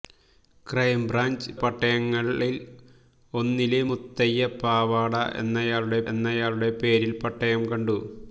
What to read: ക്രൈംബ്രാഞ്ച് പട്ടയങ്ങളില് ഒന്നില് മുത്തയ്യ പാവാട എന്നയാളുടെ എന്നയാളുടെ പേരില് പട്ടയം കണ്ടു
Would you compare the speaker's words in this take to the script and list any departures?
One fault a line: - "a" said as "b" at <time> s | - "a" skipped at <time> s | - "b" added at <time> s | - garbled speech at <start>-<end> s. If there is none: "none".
none